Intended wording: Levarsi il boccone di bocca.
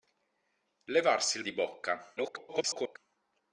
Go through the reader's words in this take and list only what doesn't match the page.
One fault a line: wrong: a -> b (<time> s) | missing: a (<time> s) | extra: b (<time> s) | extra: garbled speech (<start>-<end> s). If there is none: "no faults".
missing: boccone (1.4 s)
extra: garbled speech (2.2-3.0 s)